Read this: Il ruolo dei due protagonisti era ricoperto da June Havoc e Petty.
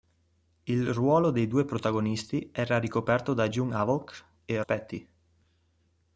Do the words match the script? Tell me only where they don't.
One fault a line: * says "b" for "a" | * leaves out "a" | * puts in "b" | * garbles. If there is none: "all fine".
all fine